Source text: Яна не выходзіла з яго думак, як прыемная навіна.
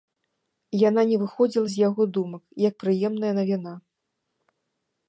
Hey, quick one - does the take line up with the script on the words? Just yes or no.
yes